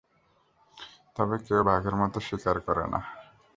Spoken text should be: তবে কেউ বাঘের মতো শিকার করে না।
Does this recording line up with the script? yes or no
yes